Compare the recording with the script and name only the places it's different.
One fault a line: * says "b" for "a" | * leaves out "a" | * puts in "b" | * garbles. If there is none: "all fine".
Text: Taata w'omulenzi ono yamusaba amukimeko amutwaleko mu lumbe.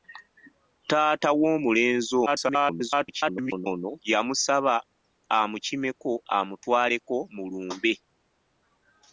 * garbles